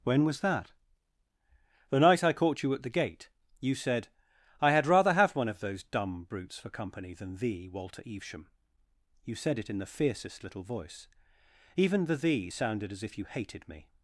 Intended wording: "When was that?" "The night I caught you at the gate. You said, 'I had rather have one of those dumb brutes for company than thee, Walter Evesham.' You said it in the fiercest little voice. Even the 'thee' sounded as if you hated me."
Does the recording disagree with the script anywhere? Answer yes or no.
no